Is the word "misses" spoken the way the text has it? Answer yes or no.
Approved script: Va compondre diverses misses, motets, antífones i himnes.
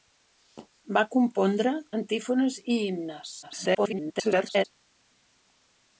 no